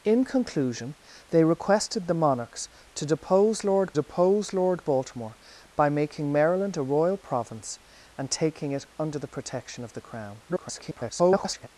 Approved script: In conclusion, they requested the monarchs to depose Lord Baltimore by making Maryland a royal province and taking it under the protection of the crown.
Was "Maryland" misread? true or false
false